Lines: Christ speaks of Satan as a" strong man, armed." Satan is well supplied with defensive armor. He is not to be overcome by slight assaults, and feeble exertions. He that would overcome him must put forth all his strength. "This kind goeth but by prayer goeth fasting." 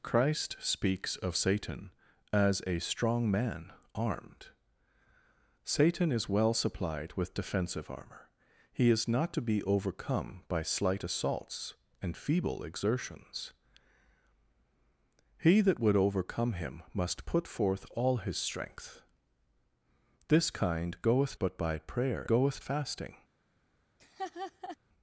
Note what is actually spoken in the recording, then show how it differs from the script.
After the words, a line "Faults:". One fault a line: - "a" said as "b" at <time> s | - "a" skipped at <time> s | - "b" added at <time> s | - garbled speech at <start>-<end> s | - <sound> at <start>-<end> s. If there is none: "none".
Christ speaks of Satan as a" strong man, armed." Satan is well supplied with defensive armor. He is not to be overcome by slight assaults, and feeble exertions. He that would overcome him must put forth all his strength. "This kind goeth but by prayer goeth fasting."
Faults:
- laugh at 24.0-24.8 s